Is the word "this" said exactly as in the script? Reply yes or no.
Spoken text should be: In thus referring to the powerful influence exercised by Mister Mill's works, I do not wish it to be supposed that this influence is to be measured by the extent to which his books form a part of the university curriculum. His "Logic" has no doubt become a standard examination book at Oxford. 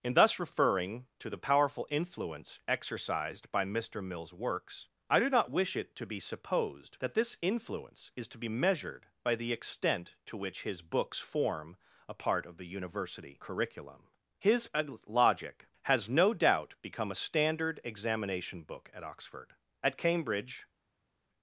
yes